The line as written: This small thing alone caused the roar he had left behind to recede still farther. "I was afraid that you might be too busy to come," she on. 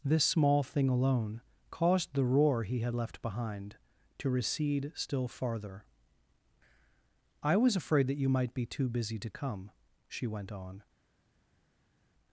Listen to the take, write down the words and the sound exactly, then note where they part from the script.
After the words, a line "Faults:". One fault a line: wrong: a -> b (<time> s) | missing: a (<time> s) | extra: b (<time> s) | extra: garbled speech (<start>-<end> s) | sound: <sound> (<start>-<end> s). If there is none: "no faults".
This small thing alone caused the roar he had left behind to recede still farther. "I was afraid that you might be too busy to come," she went on.
Faults:
extra: went (10.3 s)